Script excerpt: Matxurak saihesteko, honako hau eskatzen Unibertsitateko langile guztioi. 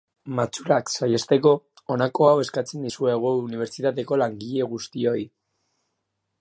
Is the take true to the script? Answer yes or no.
no